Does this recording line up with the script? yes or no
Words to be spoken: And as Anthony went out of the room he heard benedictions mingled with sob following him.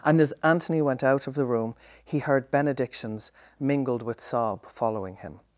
yes